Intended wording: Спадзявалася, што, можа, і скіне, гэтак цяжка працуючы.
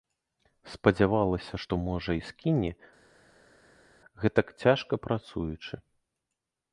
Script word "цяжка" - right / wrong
right